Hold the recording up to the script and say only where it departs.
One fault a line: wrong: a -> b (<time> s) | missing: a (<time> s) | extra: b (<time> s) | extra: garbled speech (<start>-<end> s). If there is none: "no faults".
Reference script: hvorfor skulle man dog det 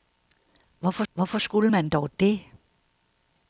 extra: hvorfor (1.1 s)